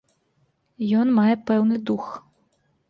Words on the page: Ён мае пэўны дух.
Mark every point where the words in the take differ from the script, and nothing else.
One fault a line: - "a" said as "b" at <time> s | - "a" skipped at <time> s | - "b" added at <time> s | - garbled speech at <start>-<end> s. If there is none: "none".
none